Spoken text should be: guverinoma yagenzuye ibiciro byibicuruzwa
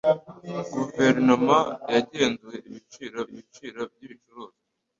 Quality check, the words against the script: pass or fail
fail